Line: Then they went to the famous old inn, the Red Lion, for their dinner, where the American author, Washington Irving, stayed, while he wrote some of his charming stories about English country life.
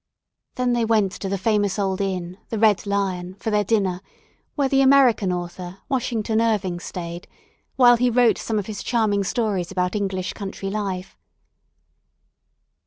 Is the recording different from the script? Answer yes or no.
no